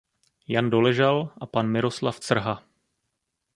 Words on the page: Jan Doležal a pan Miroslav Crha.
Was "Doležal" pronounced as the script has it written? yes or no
yes